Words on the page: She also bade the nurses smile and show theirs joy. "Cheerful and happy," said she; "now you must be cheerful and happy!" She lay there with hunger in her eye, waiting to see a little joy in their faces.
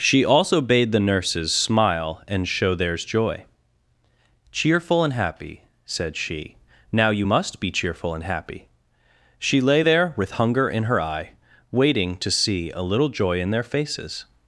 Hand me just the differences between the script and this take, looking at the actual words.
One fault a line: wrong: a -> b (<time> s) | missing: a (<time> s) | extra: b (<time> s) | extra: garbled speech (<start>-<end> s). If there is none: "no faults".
no faults